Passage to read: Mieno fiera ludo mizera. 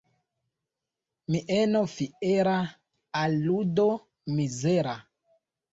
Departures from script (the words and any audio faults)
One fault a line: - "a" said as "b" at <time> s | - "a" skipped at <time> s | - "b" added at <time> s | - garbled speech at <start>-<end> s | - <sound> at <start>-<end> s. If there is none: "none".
- "al" added at 3.1 s